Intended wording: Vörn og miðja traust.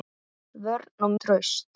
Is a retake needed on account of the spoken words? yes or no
yes